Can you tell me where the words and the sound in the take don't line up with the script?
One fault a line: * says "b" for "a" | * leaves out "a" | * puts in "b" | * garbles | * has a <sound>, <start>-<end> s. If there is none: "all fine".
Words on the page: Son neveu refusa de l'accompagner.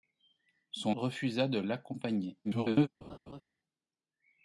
* leaves out "neveu"
* garbles
* has a laugh, 3.0-3.4 s